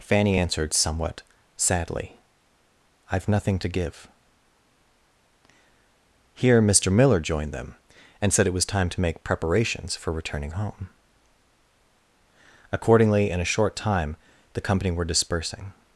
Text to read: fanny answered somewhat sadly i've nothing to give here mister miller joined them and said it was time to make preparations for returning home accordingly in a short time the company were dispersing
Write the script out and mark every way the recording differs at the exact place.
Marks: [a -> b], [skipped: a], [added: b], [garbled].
fanny answered somewhat sadly i've nothing to give here mister miller joined them and said it was time to make preparations for returning home accordingly in a short time the company were dispersing